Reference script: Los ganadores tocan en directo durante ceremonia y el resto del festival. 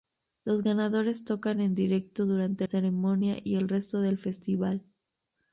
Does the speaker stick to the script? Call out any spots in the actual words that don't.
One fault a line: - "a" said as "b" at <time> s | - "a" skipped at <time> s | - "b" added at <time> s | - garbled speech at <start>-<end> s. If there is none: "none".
none